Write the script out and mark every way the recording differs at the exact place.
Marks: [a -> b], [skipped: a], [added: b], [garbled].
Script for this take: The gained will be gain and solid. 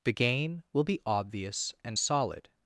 The [gained -> gain] will be [gain -> obvious] and solid.